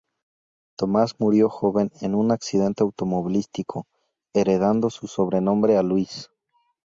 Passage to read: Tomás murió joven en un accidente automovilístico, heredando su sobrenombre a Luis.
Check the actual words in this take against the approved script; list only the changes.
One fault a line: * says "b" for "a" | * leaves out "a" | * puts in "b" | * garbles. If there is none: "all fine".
all fine